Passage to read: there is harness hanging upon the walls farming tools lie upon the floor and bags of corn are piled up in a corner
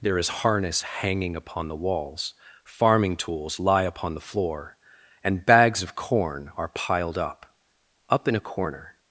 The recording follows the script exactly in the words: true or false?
false